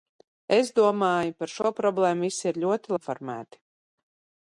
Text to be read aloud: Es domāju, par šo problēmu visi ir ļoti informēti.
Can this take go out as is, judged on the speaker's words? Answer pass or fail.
pass